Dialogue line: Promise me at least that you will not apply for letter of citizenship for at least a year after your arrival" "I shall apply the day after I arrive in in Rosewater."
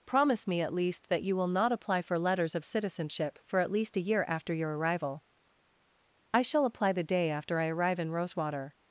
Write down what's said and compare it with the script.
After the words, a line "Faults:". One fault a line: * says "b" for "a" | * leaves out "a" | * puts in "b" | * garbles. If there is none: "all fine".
Promise me at least that you will not apply for letters of citizenship for at least a year after your arrival" "I shall apply the day after I arrive in Rosewater."
Faults:
* says "letters" for "letter"
* leaves out "in"